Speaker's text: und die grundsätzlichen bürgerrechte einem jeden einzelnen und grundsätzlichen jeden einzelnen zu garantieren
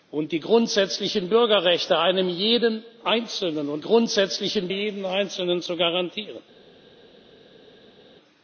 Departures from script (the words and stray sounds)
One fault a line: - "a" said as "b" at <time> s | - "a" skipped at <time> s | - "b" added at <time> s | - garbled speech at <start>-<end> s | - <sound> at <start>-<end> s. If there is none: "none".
none